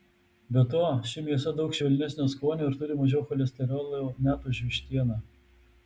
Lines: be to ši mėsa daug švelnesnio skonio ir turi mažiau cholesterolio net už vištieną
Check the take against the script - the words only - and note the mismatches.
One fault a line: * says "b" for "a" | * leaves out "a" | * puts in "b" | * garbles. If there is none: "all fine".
all fine